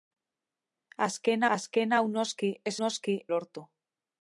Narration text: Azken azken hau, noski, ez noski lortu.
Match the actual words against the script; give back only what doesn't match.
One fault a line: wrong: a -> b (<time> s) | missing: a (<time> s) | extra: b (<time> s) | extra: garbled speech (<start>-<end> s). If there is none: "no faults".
no faults